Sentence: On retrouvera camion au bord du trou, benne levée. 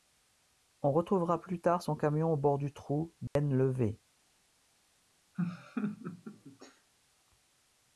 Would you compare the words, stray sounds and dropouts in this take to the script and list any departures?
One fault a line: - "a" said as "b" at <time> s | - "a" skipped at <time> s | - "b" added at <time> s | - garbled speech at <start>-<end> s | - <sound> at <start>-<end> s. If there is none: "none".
- "plus tard son" added at 1.4 s
- dropout at 3.3-3.4 s
- laugh at 5.3-6.9 s